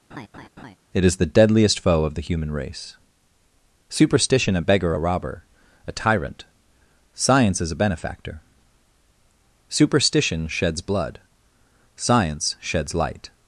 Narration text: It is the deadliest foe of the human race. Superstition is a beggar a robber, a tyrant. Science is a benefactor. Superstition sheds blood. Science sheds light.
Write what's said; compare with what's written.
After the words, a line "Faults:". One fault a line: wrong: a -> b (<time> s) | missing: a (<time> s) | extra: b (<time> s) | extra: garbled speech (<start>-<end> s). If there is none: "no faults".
It is the deadliest foe of the human race. Superstition a beggar a robber, a tyrant. Science is a benefactor. Superstition sheds blood. Science sheds light.
Faults:
missing: is (4.5 s)